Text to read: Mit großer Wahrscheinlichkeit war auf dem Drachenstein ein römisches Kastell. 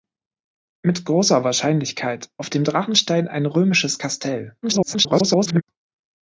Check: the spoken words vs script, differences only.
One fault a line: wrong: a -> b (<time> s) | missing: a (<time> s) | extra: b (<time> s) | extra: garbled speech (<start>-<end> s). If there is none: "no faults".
missing: war (2.3 s)
extra: garbled speech (4.6-5.6 s)